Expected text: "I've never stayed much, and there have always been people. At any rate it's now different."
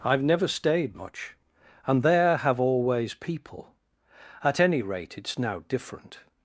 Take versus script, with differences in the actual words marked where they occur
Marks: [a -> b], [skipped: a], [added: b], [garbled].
"I've never stayed much, and there have always [skipped: been] people. At any rate it's now different."